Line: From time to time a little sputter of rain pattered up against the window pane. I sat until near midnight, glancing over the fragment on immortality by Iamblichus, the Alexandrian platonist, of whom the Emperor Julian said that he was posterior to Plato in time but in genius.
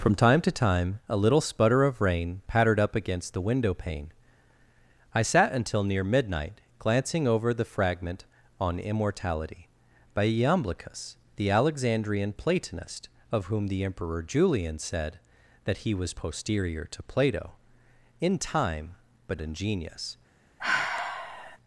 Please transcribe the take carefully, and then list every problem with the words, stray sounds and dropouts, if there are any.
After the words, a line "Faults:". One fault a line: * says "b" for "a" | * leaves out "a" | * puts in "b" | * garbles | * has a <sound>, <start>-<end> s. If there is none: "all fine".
From time to time a little sputter of rain pattered up against the window pane. I sat until near midnight, glancing over the fragment on immortality by Iamblichus, the Alexandrian platonist, of whom the Emperor Julian said that he was posterior to Plato in time but in genius.
Faults:
* has a sigh, 20.6-21.6 s